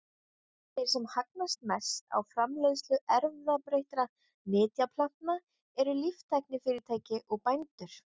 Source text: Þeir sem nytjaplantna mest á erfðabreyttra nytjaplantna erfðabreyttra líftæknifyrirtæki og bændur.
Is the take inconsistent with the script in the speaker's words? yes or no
yes